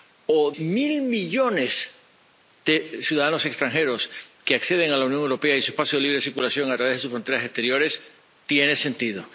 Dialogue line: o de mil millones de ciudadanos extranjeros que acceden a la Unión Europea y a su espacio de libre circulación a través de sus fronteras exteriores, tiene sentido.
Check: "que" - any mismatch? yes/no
no